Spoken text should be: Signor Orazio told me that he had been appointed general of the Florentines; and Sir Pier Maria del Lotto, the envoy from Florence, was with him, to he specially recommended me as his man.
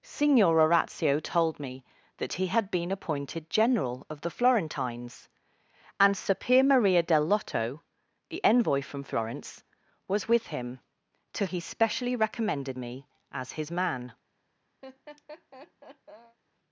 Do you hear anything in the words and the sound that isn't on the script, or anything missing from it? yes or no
yes